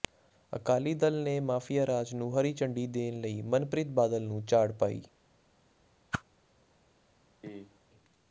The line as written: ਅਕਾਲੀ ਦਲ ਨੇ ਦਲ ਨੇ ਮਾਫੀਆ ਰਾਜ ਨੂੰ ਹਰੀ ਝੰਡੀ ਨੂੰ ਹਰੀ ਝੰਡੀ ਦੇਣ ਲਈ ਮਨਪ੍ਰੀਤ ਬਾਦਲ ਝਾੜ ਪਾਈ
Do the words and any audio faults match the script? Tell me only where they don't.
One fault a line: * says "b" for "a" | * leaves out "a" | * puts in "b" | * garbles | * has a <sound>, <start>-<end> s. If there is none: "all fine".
* leaves out "ਦਲ ਨੇ"
* leaves out "ਨੂੰ ਹਰੀ ਝੰਡੀ"
* puts in "ਨੂੰ"
* has a whoosh, 6.1-6.2 s
* has a cough, 7.4-7.8 s